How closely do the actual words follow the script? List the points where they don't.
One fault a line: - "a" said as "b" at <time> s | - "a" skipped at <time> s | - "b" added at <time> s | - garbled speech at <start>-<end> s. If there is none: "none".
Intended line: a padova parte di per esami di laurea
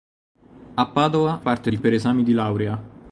none